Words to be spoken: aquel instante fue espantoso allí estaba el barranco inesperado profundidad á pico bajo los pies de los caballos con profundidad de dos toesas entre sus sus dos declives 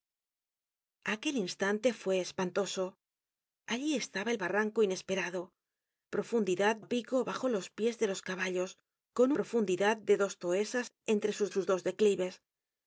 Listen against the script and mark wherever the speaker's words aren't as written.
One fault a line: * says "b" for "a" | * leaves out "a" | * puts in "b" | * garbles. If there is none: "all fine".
all fine